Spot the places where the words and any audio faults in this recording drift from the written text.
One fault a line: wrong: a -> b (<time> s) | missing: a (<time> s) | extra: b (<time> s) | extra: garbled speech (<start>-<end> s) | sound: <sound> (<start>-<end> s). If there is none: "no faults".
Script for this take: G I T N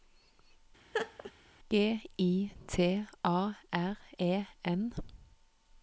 sound: laugh (0.9-1.3 s)
extra: A R E (3.2 s)